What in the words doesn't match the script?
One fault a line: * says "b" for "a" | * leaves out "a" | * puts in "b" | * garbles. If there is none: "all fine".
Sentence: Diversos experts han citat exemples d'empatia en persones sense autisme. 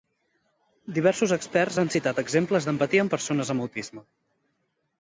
* says "amb" for "sense"